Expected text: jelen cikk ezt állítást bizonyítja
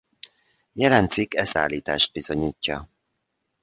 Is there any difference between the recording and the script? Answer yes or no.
no